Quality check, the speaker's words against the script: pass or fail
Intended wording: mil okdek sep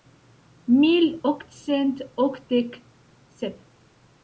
fail